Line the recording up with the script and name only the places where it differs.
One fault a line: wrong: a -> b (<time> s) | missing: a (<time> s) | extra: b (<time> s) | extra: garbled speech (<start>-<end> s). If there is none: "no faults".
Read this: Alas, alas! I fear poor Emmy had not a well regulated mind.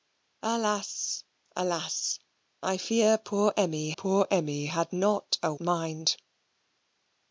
extra: poor Emmy (3.9 s)
missing: well regulated (5.5 s)